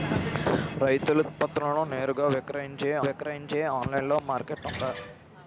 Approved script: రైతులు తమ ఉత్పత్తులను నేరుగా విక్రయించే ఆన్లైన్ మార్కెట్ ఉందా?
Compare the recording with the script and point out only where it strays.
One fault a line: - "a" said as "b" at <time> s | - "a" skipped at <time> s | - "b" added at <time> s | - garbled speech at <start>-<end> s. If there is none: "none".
- "తమ" skipped at 1.2 s
- "విక్రయించే" added at 3.1 s